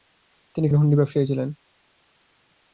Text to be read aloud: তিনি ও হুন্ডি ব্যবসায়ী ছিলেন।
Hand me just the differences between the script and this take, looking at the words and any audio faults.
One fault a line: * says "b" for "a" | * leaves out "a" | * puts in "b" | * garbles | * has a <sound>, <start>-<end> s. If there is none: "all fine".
all fine